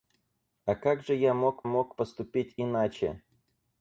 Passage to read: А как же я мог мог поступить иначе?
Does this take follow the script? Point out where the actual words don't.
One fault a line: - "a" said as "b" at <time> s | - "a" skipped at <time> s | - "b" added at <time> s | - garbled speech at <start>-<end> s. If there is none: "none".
none